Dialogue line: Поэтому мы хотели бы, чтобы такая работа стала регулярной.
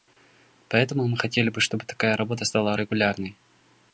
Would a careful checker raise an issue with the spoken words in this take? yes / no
no